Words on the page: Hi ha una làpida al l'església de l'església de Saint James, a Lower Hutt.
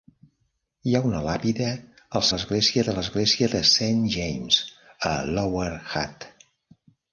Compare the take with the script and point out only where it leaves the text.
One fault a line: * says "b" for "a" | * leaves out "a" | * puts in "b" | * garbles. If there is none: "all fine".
all fine